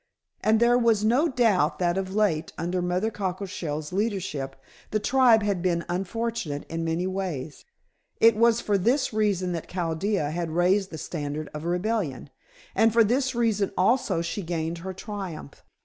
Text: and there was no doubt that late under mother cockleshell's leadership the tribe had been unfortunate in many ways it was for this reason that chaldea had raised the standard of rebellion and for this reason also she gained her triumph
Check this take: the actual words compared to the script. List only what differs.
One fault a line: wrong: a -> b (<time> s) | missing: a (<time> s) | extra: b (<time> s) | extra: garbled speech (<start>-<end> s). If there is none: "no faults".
extra: of (1.9 s)